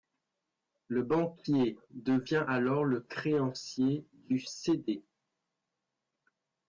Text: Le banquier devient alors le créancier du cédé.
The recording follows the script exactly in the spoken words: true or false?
true